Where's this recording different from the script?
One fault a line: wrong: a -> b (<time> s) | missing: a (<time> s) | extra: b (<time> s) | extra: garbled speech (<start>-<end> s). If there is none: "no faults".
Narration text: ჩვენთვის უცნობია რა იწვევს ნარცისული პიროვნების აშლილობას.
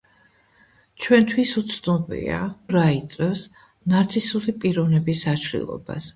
no faults